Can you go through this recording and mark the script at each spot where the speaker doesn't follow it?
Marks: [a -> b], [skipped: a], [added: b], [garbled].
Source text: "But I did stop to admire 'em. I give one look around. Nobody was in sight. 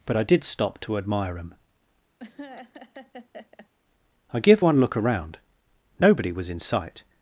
"But I did stop to admire 'em. I give one look around. Nobody was in sight.